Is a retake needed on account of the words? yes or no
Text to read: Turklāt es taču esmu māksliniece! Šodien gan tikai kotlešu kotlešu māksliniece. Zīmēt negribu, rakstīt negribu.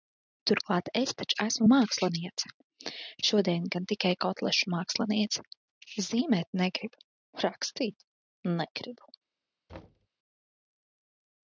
yes